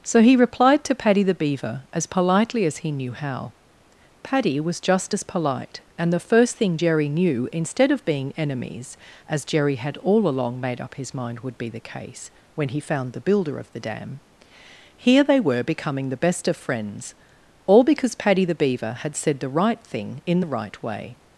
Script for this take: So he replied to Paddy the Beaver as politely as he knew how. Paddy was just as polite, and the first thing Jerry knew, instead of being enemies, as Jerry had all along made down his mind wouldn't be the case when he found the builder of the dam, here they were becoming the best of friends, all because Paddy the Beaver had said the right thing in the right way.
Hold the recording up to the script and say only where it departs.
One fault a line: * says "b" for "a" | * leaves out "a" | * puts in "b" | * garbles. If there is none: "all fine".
* says "up" for "down"
* says "would" for "wouldn't"